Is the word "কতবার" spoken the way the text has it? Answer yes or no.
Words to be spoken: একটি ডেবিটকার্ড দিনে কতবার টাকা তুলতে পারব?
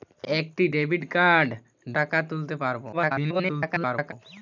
no